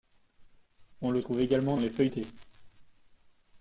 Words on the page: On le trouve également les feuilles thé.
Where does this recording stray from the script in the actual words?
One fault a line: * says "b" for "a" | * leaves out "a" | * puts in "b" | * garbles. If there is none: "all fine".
all fine